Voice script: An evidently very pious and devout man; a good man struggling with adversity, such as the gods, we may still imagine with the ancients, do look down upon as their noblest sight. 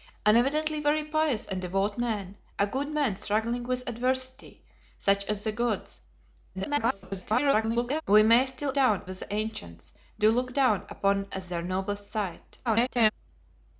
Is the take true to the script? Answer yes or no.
no